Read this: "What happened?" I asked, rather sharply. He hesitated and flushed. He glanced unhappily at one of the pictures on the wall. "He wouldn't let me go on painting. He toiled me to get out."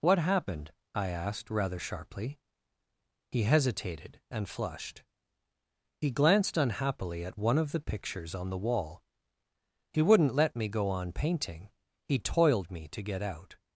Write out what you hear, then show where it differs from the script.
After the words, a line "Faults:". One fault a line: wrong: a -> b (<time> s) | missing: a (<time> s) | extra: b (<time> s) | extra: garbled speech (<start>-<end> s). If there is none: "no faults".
"What happened?" I asked, rather sharply. He hesitated and flushed. He glanced unhappily at one of the pictures on the wall. "He wouldn't let me go on painting. He toiled me to get out."
Faults:
no faults